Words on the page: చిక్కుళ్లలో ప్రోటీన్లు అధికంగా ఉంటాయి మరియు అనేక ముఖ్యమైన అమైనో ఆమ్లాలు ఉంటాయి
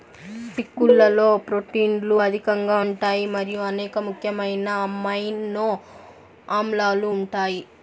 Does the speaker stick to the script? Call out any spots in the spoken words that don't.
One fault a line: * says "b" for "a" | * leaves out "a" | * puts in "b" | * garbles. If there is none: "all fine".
all fine